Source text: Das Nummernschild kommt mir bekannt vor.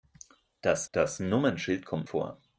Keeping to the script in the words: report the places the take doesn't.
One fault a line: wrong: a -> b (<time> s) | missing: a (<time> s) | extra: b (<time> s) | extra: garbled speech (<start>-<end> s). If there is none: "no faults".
extra: das (0.9 s)
missing: mir bekannt (2.1 s)